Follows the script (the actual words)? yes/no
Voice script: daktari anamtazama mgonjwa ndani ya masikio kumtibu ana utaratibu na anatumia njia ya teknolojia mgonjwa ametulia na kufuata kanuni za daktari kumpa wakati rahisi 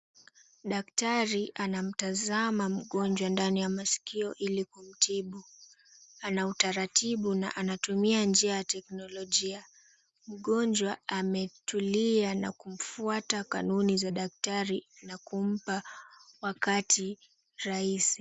no